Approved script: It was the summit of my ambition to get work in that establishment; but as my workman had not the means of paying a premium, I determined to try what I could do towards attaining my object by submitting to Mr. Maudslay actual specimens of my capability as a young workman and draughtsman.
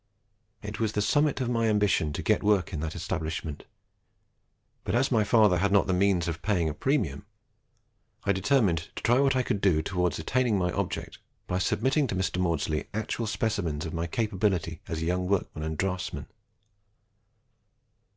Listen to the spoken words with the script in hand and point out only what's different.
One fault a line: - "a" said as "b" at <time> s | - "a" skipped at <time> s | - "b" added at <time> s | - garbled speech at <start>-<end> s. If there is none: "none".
- "workman" said as "father" at 5.2 s